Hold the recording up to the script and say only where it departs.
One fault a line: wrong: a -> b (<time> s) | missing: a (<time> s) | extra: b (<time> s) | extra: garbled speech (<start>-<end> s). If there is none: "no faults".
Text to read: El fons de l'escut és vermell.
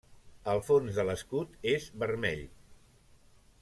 no faults